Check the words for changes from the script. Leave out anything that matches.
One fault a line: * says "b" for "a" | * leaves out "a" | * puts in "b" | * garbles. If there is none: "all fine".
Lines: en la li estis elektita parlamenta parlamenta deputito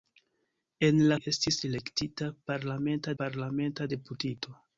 all fine